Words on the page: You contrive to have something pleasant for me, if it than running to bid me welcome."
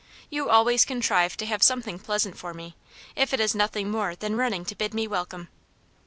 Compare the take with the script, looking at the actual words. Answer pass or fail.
fail